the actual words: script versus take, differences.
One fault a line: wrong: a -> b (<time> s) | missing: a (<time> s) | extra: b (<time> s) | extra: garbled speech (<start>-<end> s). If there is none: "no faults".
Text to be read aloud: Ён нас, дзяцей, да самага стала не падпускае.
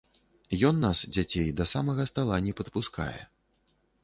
no faults